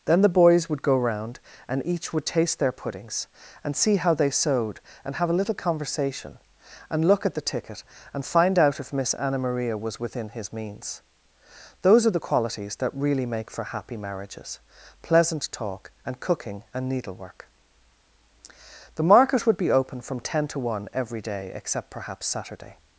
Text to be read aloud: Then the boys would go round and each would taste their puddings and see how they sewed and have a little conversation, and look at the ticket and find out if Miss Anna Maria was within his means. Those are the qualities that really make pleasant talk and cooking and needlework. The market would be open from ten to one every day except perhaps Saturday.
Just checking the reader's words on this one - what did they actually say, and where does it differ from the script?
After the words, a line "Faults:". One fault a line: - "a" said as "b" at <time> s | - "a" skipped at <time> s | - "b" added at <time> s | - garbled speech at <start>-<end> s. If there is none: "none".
Then the boys would go round and each would taste their puddings and see how they sewed and have a little conversation, and look at the ticket and find out if Miss Anna Maria was within his means. Those are the qualities that really make for happy marriages, pleasant talk and cooking and needlework. The market would be open from ten to one every day except perhaps Saturday.
Faults:
- "for happy marriages" added at 13.5 s